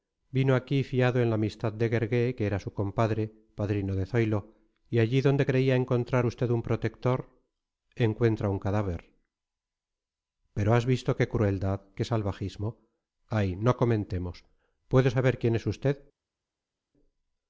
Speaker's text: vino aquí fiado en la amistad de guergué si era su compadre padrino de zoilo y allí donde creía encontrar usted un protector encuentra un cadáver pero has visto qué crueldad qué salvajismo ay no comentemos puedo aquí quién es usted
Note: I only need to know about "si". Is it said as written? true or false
false